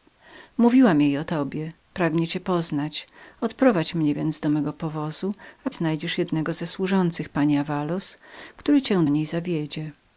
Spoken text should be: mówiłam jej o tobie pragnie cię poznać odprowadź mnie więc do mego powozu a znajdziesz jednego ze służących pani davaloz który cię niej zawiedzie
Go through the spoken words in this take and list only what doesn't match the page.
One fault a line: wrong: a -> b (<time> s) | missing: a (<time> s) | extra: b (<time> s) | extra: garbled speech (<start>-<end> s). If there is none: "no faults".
no faults